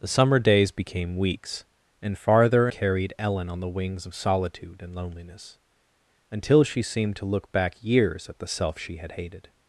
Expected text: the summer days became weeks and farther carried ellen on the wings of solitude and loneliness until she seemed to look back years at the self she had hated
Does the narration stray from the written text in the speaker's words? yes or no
no